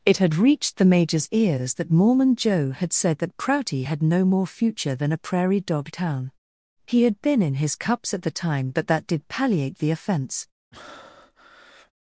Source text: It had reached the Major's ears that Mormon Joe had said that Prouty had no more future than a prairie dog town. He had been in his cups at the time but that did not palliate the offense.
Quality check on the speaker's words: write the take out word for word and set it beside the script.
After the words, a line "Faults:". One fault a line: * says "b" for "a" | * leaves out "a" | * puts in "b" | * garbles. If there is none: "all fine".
It had reached the Major's ears that Mormon Joe had said that Prouty had no more future than a prairie dog town. He had been in his cups at the time but that did palliate the offense.
Faults:
* leaves out "not"